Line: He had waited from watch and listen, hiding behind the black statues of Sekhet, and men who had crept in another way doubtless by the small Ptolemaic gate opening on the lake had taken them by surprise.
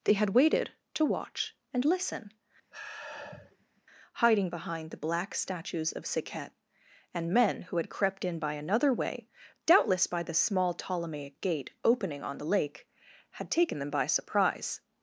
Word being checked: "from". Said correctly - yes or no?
no